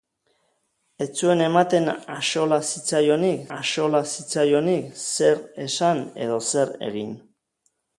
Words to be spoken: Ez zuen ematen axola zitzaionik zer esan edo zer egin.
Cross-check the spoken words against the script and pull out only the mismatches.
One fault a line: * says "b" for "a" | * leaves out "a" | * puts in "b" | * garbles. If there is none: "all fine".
* puts in "axola zitzaionik"